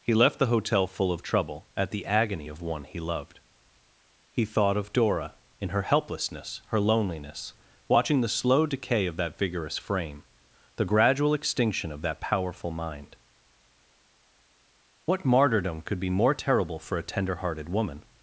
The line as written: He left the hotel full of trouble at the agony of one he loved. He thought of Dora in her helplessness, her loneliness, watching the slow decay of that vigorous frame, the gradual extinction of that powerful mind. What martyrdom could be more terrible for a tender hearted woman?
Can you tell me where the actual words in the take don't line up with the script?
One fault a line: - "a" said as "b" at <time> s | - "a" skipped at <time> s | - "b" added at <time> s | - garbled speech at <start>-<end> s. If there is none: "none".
none